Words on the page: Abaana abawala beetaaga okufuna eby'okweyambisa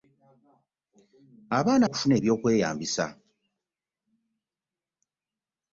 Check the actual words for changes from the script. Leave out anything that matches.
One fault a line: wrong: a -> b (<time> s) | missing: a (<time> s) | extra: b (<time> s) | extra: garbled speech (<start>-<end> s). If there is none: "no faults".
missing: abawala beetaaga (1.9 s)